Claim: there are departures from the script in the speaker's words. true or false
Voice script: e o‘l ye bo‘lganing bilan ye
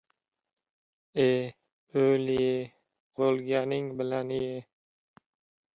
false